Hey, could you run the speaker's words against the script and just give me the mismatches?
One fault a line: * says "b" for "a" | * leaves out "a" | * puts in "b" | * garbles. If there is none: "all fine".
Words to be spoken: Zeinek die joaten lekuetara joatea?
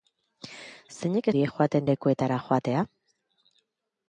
all fine